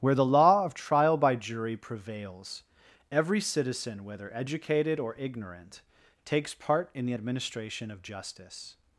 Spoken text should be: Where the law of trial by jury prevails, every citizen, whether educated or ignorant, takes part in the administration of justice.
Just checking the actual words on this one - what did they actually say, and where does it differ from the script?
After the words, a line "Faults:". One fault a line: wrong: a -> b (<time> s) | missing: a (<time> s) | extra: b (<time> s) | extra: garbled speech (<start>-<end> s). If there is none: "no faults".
Where the law of trial by jury prevails, every citizen, whether educated or ignorant, takes part in the administration of justice.
Faults:
no faults